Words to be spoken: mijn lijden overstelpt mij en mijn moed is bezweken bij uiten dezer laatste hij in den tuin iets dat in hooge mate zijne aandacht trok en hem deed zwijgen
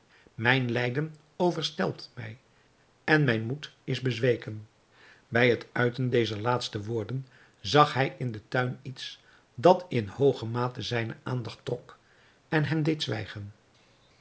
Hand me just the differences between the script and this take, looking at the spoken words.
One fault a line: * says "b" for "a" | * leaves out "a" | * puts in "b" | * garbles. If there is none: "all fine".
* puts in "het"
* puts in "woorden zag"